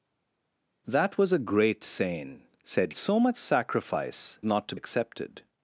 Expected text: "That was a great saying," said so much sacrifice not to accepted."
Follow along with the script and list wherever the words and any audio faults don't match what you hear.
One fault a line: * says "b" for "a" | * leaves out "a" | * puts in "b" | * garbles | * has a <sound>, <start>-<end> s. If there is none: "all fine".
all fine